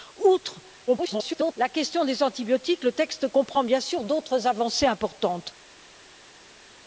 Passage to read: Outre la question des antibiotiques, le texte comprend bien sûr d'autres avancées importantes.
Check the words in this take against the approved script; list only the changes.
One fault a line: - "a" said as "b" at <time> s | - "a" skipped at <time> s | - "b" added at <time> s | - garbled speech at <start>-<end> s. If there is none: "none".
- garbled speech at 0.9-1.5 s